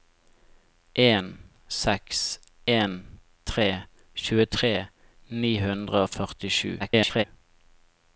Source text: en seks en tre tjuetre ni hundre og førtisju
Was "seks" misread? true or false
false